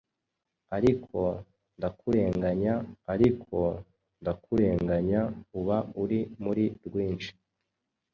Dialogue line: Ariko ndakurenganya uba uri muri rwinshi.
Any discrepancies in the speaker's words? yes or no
yes